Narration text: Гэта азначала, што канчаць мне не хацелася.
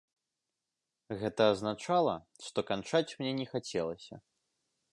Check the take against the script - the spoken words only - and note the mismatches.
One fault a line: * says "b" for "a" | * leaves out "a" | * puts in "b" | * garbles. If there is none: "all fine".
all fine